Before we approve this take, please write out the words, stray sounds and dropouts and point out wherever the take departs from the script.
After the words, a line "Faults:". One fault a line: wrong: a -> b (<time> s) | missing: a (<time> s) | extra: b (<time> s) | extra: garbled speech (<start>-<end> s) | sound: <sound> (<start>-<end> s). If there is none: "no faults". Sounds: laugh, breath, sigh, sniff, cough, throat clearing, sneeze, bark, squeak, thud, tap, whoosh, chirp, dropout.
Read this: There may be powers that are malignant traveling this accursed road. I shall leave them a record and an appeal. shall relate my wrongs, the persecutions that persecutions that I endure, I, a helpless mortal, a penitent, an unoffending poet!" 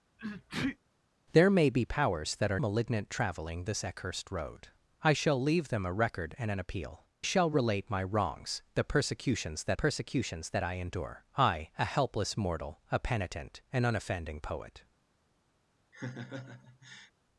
There may be powers that are malignant traveling this accursed road. I shall leave them a record and an appeal. shall relate my wrongs, the persecutions that persecutions that I endure, I, a helpless mortal, a penitent, an unoffending poet!"
Faults:
sound: sneeze (0.2-0.8 s)
sound: laugh (15.9-17.1 s)